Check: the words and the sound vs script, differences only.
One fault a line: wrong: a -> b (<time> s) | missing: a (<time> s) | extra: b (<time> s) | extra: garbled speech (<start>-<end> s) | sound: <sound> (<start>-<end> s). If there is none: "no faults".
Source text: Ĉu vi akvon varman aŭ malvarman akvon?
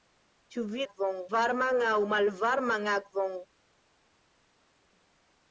no faults